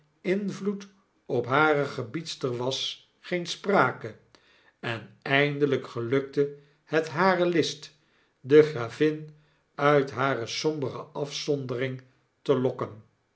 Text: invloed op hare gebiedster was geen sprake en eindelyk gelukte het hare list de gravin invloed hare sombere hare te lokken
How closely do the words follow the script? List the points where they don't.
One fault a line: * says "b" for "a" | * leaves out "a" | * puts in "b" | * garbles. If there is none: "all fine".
* says "uit" for "invloed"
* says "afzondering" for "hare"